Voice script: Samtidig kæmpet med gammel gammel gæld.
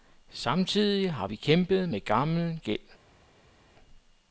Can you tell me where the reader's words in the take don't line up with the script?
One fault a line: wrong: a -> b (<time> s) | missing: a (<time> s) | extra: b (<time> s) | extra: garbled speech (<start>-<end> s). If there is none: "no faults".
extra: har vi (1.1 s)
missing: gammel (2.6 s)